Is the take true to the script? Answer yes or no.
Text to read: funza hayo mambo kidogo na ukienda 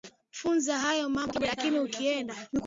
no